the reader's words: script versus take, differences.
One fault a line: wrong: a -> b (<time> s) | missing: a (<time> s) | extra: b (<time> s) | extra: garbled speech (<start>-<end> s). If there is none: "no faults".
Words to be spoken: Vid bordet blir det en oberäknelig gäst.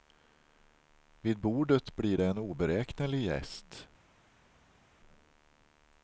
no faults